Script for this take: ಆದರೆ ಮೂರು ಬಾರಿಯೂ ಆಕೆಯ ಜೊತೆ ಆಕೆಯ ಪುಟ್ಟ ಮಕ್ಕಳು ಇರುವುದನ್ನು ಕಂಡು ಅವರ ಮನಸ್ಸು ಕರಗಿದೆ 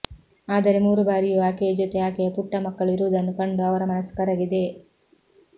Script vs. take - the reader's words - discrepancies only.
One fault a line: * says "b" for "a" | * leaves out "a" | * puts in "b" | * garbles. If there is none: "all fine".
all fine